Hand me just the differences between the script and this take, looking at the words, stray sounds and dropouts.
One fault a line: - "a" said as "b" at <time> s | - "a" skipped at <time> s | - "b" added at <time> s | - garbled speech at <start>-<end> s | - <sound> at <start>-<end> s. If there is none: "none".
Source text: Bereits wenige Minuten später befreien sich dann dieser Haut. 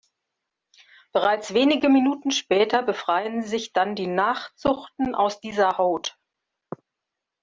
- "die Nachzuchten aus" added at 4.0 s